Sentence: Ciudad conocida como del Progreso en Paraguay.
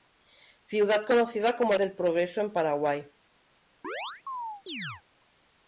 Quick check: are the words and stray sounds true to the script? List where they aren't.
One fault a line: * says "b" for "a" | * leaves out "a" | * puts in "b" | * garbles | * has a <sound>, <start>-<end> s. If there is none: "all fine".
* has a chirp, 3.8-5.0 s